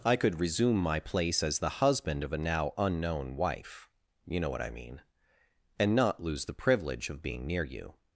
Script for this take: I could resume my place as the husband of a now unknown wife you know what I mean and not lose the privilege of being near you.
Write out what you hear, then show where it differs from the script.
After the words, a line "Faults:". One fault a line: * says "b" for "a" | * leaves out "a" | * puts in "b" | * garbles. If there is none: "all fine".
I could resume my place as the husband of a now unknown wife you know what I mean and not lose the privilege of being near you.
Faults:
all fine